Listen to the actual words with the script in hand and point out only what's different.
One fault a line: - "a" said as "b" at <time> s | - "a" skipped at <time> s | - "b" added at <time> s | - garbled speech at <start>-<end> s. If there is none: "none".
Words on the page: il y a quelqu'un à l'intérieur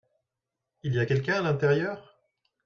none